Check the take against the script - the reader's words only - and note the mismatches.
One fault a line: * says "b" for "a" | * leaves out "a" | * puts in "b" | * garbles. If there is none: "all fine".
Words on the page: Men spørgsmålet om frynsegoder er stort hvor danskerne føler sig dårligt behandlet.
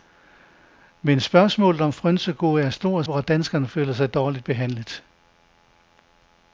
all fine